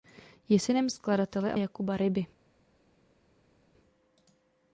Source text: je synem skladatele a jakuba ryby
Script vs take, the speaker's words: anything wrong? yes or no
no